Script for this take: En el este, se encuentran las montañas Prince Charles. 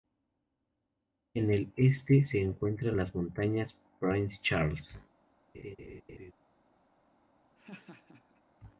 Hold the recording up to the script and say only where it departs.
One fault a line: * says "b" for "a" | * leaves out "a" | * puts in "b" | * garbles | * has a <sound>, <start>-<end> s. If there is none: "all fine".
* has a laugh, 5.5-6.3 s
* has a laugh, 7.5-8.4 s